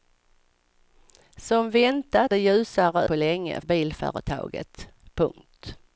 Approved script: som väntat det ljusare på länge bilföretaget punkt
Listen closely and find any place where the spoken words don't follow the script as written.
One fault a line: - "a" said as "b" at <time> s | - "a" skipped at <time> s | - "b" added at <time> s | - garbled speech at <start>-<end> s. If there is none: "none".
none